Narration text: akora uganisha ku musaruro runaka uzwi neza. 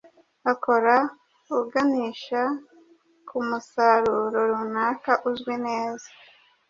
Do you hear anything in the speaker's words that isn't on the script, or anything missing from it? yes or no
no